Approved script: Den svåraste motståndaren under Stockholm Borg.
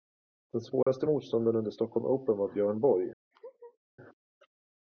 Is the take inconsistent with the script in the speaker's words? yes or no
yes